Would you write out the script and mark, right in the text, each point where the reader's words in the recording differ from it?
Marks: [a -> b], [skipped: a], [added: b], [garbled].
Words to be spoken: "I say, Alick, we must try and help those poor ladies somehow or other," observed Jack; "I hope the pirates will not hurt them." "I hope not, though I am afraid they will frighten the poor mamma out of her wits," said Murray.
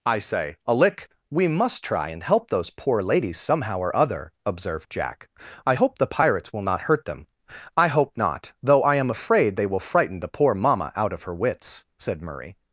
"I say, Alick, we must try and help those poor ladies somehow or other," observed Jack; "I hope the pirates will not hurt them." "I hope not, though I am afraid they will frighten the poor mamma out of her wits," said Murray.